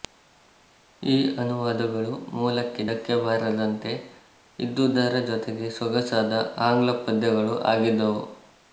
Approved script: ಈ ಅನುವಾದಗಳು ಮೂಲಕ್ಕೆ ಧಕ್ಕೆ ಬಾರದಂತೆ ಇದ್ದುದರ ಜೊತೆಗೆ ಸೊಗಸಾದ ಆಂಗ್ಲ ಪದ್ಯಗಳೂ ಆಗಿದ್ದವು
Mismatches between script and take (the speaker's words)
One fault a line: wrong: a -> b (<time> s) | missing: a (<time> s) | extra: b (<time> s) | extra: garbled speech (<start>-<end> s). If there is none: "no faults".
no faults